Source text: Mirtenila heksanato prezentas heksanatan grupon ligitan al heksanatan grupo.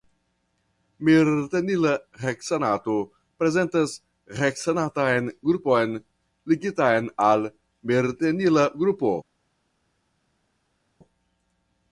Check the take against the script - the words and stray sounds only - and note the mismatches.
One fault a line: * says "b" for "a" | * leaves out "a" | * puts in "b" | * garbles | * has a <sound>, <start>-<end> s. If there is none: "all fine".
* says "mirtenila" for "heksanatan"